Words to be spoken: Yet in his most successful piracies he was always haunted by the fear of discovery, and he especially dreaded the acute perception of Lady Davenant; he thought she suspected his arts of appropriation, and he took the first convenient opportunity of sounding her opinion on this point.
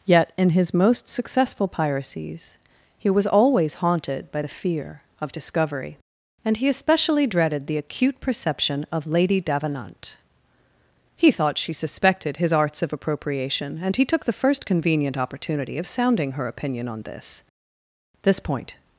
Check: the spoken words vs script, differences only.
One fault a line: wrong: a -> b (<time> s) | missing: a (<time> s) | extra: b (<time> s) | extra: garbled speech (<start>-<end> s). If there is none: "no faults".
extra: this (18.2 s)